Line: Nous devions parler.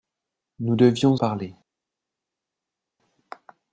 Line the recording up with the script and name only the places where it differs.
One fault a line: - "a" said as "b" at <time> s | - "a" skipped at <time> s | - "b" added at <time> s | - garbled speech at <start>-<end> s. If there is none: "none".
none